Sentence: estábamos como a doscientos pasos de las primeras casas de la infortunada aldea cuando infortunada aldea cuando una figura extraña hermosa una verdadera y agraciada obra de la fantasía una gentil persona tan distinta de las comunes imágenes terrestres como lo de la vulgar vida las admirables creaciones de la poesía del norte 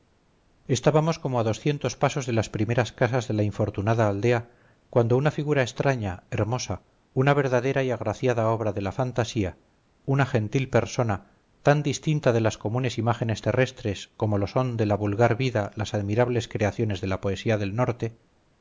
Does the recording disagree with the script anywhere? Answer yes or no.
yes